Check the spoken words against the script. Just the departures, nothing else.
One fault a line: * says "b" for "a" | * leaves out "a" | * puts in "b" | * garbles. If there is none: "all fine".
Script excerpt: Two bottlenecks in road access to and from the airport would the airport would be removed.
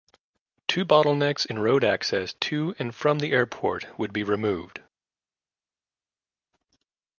* leaves out "the airport would"